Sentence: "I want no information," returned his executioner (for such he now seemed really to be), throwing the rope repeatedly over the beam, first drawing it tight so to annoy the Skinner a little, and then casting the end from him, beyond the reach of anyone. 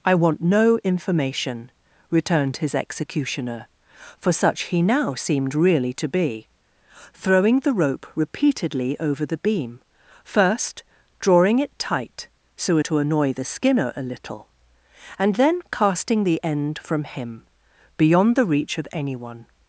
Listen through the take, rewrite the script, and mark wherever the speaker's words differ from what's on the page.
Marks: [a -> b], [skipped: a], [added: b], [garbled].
"I want no information," returned his executioner (for such he now seemed really to be), throwing the rope repeatedly over the beam, first drawing it tight so to annoy the Skinner a little, and then casting the end from him, beyond the reach of anyone.